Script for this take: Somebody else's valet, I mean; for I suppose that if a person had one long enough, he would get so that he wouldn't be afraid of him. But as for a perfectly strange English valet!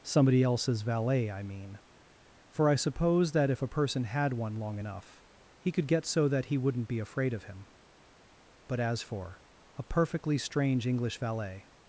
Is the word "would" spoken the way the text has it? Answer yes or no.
no